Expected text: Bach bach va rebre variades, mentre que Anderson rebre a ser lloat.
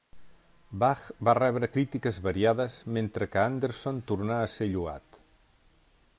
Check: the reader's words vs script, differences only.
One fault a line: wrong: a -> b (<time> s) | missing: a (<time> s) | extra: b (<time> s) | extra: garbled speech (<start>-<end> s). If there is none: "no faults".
missing: bach (1.0 s)
extra: crítiques (1.7 s)
wrong: rebre -> tornà (4.1 s)